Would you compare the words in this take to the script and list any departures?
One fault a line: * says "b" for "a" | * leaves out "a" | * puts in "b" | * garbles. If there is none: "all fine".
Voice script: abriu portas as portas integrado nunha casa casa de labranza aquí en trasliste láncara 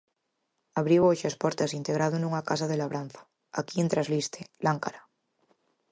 * says "hoxe" for "portas"
* leaves out "casa"